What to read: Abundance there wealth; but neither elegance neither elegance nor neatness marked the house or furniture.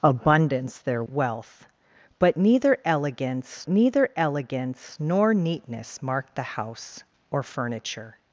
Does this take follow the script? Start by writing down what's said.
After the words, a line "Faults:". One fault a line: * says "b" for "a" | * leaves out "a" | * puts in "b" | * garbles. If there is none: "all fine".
Abundance there wealth; but neither elegance neither elegance nor neatness marked the house or furniture.
Faults:
all fine